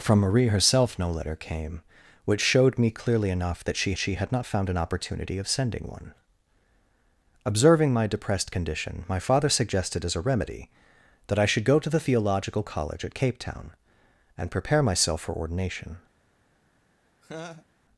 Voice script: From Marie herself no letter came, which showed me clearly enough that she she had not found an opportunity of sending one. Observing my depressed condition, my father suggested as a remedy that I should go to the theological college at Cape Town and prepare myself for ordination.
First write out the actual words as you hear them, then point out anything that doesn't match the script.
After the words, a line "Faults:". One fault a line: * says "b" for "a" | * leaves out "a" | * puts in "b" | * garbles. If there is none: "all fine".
From Marie herself no letter came, which showed me clearly enough that she she had not found an opportunity of sending one. Observing my depressed condition, my father suggested as a remedy that I should go to the theological college at Cape Town and prepare myself for ordination.
Faults:
all fine